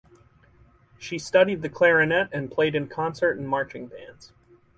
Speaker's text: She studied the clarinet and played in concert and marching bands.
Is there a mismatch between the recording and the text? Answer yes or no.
no